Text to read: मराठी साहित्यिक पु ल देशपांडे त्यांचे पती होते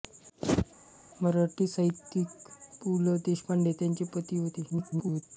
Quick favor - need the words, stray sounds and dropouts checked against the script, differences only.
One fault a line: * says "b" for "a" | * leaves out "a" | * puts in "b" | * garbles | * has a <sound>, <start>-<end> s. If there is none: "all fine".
* garbles